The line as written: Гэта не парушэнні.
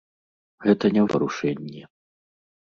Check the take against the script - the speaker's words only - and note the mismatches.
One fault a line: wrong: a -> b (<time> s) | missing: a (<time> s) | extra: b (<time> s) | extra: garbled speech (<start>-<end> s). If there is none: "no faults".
no faults